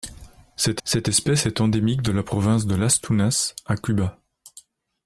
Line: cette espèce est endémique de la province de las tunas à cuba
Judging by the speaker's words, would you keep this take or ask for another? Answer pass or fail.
fail